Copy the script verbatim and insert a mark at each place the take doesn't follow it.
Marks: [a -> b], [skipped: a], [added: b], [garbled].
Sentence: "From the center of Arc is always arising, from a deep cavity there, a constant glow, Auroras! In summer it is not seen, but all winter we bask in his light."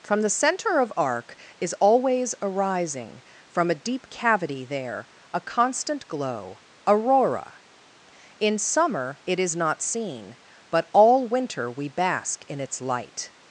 "From the center of Arc is always arising, from a deep cavity there, a constant glow, [Auroras! -> Aurora] In summer it is not seen, but all winter we bask in [his -> its] light."